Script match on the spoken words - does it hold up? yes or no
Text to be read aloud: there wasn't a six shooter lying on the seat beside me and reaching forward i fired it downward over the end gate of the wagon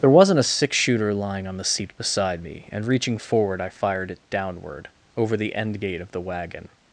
yes